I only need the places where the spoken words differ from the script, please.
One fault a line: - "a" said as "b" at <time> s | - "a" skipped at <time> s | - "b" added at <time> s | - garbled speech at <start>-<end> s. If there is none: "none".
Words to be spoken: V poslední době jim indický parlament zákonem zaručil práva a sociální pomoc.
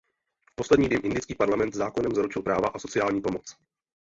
- "době" skipped at 0.9 s